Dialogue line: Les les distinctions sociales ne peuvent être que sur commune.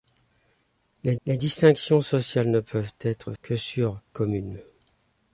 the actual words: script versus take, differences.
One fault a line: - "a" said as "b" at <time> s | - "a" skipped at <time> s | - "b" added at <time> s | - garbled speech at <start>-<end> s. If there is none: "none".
none